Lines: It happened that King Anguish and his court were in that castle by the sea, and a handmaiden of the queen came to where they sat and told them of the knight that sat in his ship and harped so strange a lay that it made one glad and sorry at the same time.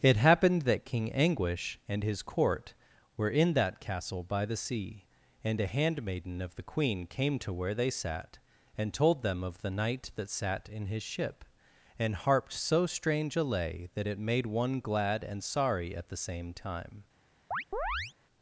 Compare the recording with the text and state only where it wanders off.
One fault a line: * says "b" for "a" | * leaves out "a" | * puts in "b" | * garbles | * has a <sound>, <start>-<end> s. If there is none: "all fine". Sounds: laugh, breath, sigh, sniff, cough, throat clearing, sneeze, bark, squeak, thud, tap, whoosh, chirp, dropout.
* has a chirp, 17.5-18.1 s